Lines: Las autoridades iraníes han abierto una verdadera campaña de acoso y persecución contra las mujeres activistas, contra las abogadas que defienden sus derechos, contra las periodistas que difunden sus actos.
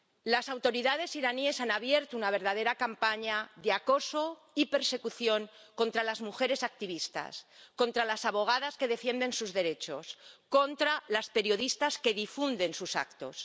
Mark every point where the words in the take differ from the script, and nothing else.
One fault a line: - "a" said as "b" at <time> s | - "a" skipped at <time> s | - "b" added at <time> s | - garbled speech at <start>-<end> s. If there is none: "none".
none